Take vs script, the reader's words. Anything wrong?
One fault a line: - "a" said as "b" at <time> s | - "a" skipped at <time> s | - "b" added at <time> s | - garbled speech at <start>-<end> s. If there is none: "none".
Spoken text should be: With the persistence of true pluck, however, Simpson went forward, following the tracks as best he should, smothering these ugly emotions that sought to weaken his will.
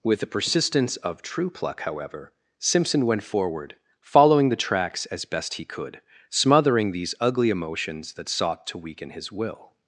- "should" said as "could" at 5.6 s